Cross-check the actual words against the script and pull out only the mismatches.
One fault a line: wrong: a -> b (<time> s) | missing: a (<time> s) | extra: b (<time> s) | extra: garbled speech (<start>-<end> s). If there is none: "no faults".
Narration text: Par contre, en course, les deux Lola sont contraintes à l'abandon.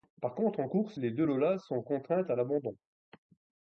no faults